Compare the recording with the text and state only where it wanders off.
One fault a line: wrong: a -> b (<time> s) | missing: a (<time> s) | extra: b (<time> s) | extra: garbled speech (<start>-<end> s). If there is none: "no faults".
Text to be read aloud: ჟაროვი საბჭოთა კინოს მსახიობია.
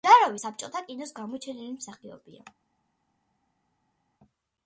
extra: გამოჩენილი (1.2 s)